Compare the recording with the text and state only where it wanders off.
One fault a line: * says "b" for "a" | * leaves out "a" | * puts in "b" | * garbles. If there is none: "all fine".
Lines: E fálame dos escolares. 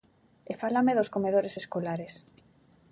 * puts in "comedores"